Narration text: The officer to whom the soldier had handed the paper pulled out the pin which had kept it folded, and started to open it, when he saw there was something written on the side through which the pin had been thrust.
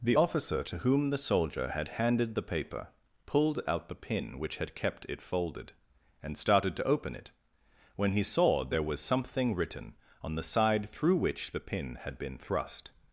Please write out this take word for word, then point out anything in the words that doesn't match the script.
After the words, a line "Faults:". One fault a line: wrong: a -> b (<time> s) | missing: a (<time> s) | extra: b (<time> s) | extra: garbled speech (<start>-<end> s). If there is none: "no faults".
The officer to whom the soldier had handed the paper pulled out the pin which had kept it folded, and started to open it, when he saw there was something written on the side through which the pin had been thrust.
Faults:
no faults